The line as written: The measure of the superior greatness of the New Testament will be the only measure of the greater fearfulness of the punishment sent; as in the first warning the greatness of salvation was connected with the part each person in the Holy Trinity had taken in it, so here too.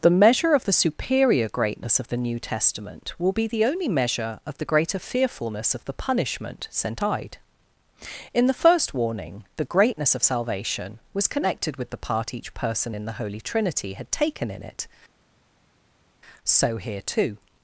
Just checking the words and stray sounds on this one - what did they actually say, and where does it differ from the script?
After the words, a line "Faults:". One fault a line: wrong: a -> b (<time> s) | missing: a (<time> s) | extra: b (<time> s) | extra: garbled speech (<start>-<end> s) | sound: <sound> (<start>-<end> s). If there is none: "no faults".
The measure of the superior greatness of the New Testament will be the only measure of the greater fearfulness of the punishment sent; eyed in the first warning the greatness of salvation was connected with the part each person in the Holy Trinity had taken in it, so here too.
Faults:
wrong: as -> eyed (7.0 s)